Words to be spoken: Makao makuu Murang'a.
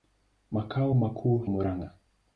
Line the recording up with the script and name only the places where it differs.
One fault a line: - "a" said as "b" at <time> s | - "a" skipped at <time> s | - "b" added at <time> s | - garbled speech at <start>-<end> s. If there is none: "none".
none